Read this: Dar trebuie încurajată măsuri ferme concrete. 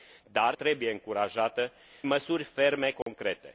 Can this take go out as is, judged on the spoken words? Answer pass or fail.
pass